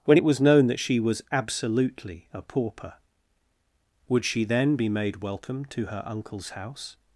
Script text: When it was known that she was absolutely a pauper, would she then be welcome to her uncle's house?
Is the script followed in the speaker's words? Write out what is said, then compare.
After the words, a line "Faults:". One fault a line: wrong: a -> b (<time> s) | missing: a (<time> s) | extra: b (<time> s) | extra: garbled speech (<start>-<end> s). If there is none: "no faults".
When it was known that she was absolutely a pauper, would she then be made welcome to her uncle's house?
Faults:
extra: made (4.9 s)